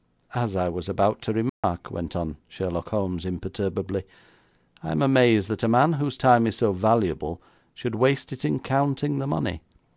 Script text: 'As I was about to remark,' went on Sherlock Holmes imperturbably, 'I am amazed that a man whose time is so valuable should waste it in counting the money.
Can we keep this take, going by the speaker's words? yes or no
yes